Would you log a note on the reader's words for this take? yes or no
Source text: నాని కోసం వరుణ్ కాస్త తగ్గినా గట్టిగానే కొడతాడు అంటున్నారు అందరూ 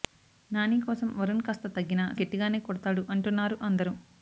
no